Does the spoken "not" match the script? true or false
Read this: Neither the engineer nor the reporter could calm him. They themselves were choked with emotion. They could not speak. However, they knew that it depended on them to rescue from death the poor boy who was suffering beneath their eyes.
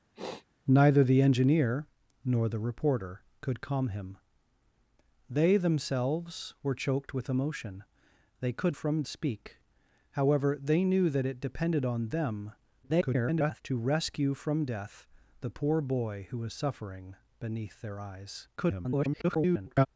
false